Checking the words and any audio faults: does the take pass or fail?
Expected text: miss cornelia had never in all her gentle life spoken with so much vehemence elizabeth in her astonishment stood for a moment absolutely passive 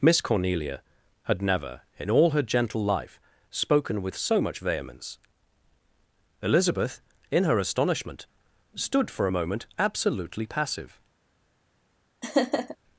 fail